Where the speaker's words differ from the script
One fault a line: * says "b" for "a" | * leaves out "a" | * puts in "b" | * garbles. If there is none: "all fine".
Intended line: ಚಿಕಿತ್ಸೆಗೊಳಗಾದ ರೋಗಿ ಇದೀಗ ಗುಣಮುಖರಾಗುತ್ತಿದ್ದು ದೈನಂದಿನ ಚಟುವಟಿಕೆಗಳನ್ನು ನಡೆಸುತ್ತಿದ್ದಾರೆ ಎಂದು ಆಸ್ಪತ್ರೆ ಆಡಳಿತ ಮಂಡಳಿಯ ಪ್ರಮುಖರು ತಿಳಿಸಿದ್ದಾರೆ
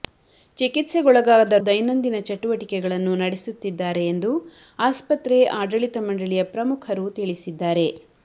* leaves out "ರೋಗಿ ಇದೀಗ ಗುಣಮುಖರಾಗುತ್ತಿದ್ದು"